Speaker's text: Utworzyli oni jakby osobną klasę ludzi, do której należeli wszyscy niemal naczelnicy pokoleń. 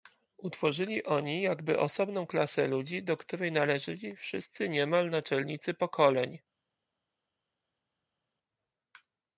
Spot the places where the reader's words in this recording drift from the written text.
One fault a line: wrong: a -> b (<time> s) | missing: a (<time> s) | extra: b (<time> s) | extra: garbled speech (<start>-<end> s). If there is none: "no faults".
no faults